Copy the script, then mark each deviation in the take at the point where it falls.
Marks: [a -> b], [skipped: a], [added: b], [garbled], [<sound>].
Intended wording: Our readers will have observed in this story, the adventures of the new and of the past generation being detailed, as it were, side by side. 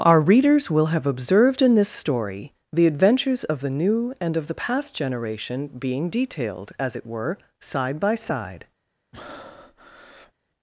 Our readers will have observed in this story, the adventures of the new and of the past generation being detailed, as it were, side by side. [breath]